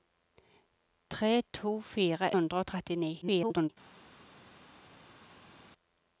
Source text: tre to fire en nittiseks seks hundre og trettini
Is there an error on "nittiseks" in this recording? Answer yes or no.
yes